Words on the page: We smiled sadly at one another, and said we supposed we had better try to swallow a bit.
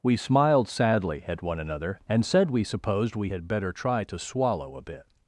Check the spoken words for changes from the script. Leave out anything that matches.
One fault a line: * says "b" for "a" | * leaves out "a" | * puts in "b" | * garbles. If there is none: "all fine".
all fine